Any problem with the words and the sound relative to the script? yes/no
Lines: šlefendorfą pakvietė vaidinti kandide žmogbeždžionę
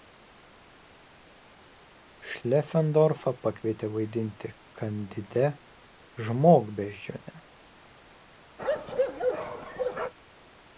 yes